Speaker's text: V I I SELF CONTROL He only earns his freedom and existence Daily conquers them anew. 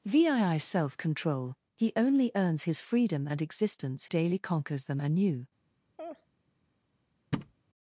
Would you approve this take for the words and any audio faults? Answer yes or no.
no